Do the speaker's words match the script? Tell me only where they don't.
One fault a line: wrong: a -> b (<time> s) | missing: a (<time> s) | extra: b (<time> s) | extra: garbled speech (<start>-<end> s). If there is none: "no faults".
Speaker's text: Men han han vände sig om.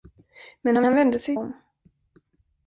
no faults